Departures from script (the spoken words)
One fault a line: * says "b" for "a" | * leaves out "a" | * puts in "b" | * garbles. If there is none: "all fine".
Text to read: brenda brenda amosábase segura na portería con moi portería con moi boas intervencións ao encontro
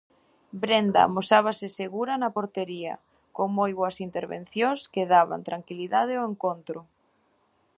* leaves out "brenda"
* says "boas intervencións que daban tranquilidade" for "portería con moi boas intervencións"